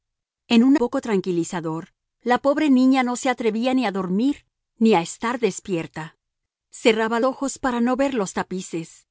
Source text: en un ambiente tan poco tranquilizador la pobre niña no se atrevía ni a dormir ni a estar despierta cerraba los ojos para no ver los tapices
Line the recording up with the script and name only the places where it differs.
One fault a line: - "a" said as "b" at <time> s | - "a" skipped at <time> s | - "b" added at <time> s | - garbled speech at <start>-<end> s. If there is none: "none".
- "ambiente tan" skipped at 0.8 s
- "los" skipped at 7.2 s